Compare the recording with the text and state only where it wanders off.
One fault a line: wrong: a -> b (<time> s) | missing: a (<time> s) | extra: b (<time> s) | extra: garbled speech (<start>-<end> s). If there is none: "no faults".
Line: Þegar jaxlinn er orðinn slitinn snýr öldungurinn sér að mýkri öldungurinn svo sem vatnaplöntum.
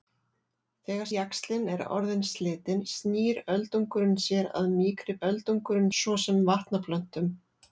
no faults